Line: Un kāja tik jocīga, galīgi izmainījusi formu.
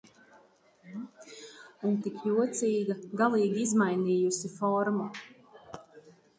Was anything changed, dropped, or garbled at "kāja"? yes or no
yes